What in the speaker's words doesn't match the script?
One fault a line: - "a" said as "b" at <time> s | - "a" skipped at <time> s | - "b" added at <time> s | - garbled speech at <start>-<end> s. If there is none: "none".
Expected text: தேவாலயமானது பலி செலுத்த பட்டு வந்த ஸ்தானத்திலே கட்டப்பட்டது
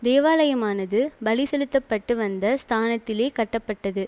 none